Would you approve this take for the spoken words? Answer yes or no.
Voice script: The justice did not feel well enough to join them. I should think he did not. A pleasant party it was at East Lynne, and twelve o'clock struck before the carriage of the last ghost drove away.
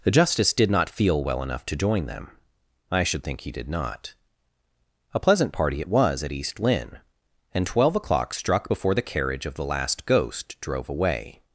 yes